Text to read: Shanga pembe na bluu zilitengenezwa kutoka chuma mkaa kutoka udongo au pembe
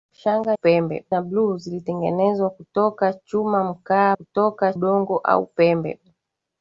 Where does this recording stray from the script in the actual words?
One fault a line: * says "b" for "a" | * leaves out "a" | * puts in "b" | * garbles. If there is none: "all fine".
all fine